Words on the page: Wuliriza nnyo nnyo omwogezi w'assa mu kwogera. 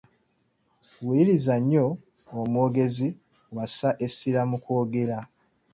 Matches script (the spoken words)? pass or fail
fail